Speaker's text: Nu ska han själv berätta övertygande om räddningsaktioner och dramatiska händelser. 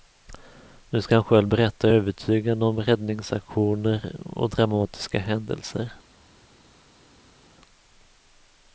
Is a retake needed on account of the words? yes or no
no